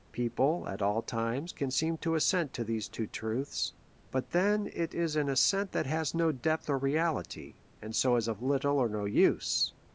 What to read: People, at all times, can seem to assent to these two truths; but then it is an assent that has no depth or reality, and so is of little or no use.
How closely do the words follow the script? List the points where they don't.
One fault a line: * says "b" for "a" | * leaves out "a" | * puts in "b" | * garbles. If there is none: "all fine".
all fine